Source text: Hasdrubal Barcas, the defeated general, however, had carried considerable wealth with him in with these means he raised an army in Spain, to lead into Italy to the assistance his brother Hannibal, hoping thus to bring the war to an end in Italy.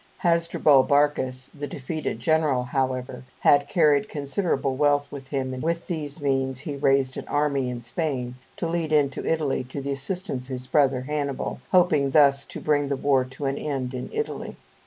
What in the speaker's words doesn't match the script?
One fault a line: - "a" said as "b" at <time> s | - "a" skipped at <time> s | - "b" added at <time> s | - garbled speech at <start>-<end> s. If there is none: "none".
none